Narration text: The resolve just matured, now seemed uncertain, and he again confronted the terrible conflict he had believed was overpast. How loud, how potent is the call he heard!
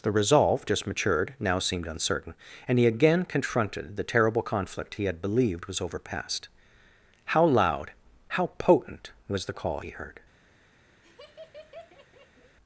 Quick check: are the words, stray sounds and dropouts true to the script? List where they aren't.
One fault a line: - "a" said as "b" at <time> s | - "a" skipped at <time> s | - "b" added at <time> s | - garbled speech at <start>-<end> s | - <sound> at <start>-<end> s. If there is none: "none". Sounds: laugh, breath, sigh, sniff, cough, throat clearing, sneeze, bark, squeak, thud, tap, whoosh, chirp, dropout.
- "is" said as "was" at 9.3 s
- laugh at 11.0-12.6 s